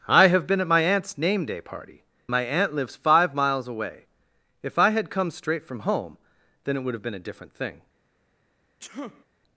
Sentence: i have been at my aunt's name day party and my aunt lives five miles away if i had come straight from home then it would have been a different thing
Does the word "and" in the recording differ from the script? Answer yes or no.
yes